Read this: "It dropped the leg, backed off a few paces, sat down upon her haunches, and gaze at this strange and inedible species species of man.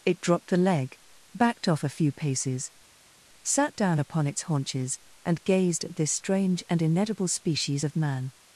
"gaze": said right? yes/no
no